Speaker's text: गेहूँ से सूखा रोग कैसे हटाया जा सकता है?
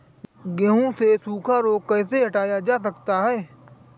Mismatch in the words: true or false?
false